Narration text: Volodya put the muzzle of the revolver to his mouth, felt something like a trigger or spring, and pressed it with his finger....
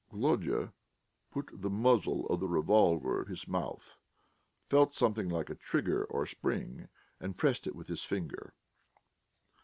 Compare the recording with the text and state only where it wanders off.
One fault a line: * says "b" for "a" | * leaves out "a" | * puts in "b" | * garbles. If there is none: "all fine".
* leaves out "to"